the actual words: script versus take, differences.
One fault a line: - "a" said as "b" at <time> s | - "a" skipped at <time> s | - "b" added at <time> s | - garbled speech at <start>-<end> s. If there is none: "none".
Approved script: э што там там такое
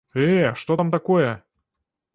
- "там" skipped at 0.9 s